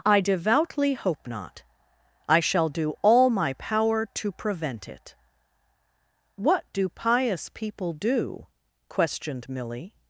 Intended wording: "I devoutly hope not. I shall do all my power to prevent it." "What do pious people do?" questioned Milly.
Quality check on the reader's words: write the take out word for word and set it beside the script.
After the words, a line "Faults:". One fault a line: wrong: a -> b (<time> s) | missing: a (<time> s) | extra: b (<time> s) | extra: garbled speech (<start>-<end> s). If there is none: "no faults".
"I devoutly hope not. I shall do all my power to prevent it." "What do pious people do?" questioned Milly.
Faults:
no faults